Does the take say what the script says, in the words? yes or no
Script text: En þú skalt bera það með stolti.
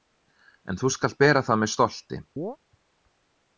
yes